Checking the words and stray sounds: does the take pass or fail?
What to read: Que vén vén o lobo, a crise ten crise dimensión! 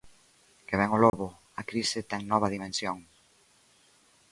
fail